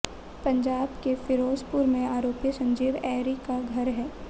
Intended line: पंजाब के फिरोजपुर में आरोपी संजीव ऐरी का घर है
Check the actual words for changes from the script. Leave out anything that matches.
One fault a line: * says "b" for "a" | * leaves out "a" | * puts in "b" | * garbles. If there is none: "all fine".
all fine